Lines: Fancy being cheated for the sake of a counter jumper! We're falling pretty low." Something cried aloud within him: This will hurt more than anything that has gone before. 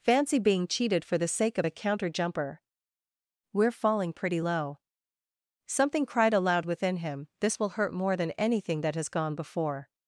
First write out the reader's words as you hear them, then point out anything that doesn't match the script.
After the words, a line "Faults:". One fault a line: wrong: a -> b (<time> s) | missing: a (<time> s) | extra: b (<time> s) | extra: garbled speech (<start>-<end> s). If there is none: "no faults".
Fancy being cheated for the sake of a counter jumper! We're falling pretty low." Something cried aloud within him: This will hurt more than anything that has gone before.
Faults:
no faults